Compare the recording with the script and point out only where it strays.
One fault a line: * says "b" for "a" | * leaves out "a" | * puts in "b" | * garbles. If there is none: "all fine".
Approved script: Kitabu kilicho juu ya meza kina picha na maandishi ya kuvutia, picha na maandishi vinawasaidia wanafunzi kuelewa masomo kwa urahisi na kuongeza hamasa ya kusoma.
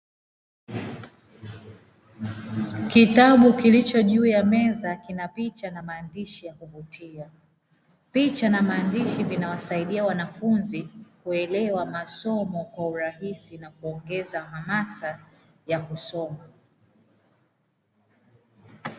all fine